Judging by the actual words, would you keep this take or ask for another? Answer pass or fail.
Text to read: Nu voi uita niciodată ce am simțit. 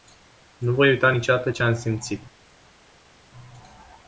pass